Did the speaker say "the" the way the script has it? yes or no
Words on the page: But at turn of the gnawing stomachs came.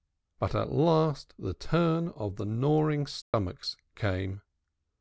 yes